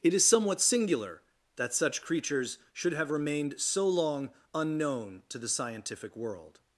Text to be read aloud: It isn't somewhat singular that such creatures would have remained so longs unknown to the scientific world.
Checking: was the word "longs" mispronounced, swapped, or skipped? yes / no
yes